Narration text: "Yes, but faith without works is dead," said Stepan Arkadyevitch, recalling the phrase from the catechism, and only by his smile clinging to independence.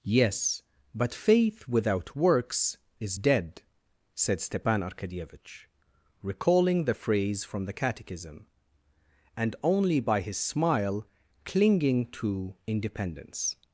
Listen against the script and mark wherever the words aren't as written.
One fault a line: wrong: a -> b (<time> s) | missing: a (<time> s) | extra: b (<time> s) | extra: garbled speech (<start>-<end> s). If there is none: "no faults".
no faults